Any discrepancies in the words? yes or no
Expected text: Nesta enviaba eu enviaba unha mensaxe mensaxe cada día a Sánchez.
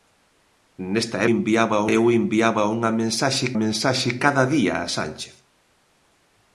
no